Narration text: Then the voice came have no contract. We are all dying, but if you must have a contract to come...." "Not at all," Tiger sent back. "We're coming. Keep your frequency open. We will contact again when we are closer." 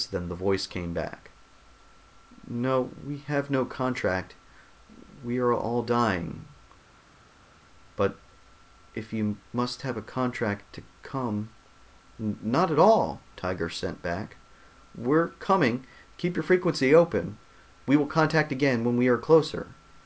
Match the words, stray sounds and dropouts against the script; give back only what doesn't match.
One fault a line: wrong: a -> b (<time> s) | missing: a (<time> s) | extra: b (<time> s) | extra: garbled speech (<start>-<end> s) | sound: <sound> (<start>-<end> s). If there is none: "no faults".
extra: back No we (0.9 s)